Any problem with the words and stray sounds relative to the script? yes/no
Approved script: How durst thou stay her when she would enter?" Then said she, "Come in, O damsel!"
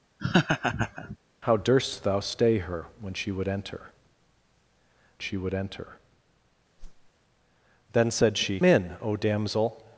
yes